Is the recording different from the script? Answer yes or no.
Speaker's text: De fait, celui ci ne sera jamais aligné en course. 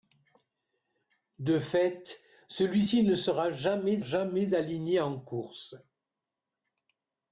yes